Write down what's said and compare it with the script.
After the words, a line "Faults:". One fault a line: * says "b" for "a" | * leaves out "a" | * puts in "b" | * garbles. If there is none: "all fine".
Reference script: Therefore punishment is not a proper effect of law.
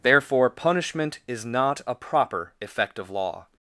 Therefore punishment is not a proper effect of law.
Faults:
all fine